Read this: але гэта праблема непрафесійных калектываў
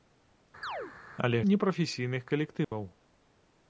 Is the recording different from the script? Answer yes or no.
yes